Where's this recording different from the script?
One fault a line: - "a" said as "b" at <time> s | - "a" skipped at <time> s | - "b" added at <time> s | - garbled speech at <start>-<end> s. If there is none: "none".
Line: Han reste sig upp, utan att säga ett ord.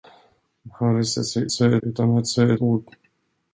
- "upp" said as "säga" at 1.5 s
- "ett" skipped at 2.5 s